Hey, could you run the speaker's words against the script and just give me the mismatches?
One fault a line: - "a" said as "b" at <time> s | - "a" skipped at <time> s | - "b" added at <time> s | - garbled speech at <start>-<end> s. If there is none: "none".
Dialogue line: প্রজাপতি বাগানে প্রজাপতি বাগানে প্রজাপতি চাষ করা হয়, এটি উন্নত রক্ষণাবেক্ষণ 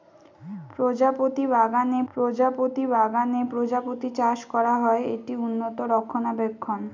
none